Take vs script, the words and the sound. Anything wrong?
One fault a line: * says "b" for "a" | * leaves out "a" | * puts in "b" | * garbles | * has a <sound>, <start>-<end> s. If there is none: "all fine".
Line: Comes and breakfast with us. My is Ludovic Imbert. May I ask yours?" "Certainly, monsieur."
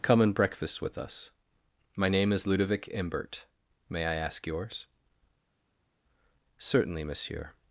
* says "Come" for "Comes"
* puts in "name"